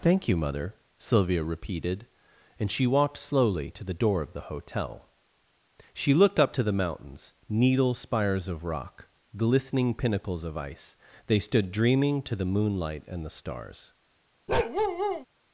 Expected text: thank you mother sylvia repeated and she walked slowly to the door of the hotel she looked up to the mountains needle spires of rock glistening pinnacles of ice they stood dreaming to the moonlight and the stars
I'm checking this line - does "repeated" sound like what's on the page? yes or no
yes